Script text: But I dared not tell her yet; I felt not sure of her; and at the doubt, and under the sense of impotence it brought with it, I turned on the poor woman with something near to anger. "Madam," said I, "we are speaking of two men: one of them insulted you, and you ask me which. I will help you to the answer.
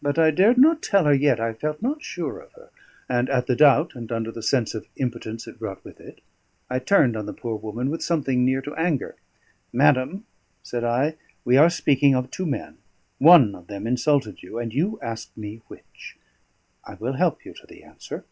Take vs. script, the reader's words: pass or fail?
pass